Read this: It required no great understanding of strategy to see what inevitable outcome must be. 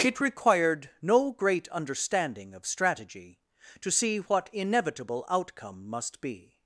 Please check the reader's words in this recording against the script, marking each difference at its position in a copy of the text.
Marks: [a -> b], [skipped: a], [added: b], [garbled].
It required no great understanding of strategy to see what inevitable outcome must be.